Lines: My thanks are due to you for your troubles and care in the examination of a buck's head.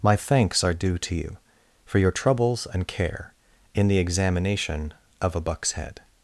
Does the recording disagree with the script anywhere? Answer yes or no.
no